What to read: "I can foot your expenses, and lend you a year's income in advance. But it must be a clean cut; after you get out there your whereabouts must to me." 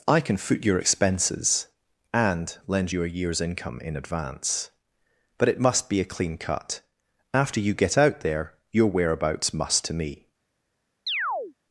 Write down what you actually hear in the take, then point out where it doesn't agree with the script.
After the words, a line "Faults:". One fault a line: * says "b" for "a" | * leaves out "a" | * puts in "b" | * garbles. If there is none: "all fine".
"I can foot your expenses, and lend you a year's income in advance. But it must be a clean cut; after you get out there your whereabouts must to me."
Faults:
all fine